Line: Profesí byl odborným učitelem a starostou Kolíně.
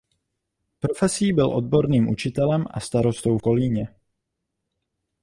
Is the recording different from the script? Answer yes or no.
no